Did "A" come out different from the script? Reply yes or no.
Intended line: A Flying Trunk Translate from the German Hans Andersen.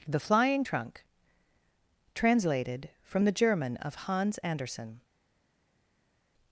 yes